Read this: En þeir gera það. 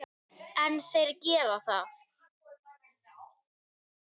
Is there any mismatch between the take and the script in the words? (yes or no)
no